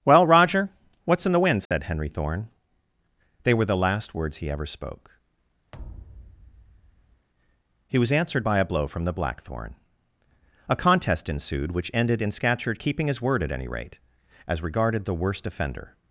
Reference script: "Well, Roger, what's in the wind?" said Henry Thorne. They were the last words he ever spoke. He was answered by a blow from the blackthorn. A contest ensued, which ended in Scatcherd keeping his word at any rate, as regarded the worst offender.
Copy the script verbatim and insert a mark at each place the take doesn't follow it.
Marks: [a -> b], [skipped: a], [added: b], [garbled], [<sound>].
"Well, Roger, what's in the wind?" said [dropout] Henry Thorne. They were the last words he ever spoke. [thud] He was answered by a blow from the blackthorn. A contest ensued, which ended in Scatcherd keeping his word at any rate, as regarded the worst offender.